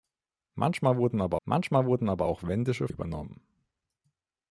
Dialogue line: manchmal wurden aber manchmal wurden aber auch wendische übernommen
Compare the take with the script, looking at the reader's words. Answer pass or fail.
pass